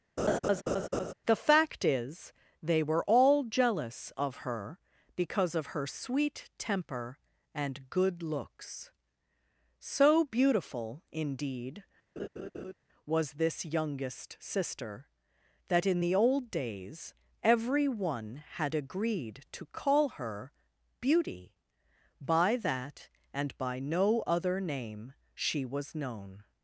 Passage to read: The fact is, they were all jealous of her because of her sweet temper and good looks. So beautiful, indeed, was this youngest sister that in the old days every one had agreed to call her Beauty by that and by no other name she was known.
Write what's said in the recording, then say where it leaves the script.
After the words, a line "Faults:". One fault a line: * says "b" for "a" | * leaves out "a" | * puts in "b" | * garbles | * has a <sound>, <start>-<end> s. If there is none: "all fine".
The fact is, they were all jealous of her because of her sweet temper and good looks. So beautiful, indeed, was this youngest sister that in the old days every one had agreed to call her Beauty by that and by no other name she was known.
Faults:
* has a laugh, 0.2-1.1 s
* has a laugh, 12.2-12.7 s